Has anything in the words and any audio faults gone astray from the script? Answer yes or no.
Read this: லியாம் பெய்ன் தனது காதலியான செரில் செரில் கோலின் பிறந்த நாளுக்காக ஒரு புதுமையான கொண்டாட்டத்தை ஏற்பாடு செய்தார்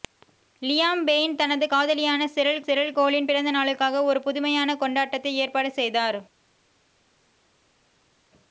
no